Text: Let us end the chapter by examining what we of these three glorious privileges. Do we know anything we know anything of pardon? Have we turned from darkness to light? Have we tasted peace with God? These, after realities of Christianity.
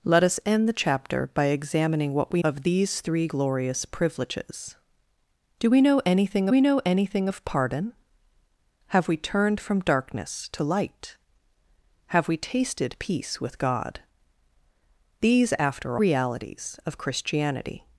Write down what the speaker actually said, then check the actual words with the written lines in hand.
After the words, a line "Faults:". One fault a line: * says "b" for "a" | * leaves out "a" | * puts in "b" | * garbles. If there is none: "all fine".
Let us end the chapter by examining what we of these three glorious privileges. Do we know anything we know anything of pardon? Have we turned from darkness to light? Have we tasted peace with God? These, after realities of Christianity.
Faults:
all fine